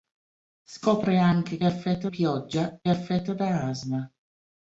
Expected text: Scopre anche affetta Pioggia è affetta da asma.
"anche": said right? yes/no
yes